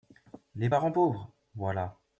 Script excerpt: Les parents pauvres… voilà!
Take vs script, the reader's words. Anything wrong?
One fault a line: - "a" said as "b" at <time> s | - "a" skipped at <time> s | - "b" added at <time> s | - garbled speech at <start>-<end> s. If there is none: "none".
none